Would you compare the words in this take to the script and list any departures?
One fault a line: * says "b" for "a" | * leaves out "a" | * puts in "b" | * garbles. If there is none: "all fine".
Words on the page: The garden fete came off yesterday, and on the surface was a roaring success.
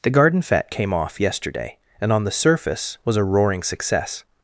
all fine